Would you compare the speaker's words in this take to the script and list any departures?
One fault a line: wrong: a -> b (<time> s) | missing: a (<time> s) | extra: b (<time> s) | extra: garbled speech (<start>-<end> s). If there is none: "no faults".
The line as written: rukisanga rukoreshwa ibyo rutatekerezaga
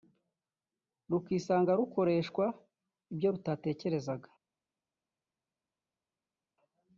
no faults